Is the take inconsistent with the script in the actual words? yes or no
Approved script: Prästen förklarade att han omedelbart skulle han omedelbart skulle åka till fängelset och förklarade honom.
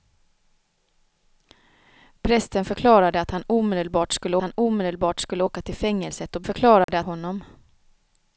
no